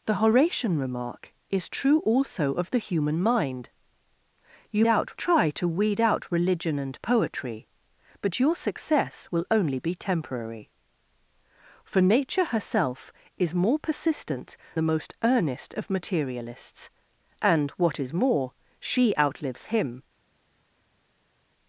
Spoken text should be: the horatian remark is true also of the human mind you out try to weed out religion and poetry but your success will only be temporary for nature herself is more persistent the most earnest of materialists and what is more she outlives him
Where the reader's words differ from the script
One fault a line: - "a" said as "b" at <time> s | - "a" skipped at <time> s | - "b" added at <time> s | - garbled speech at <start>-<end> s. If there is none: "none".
none